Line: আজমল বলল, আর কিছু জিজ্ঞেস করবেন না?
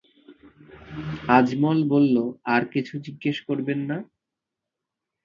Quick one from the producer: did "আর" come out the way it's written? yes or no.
yes